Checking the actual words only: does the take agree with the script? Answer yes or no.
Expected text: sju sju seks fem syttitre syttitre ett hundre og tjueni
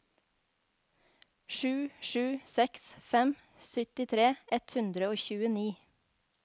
no